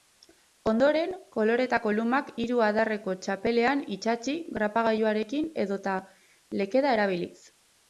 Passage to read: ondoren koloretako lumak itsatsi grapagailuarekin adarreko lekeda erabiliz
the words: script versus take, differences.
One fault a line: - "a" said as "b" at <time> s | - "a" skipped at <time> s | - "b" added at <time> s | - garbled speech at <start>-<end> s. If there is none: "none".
- "hiru adarreko txapelean" added at 2.4 s
- "adarreko" said as "edota" at 5.7 s